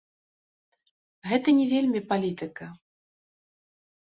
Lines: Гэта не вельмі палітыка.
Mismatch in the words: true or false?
false